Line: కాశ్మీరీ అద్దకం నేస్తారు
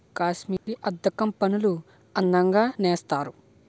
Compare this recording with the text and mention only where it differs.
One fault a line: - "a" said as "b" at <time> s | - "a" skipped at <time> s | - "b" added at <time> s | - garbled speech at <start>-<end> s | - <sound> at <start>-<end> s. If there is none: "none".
- dropout at 0.6-0.7 s
- "పనులు అందంగా" added at 1.4 s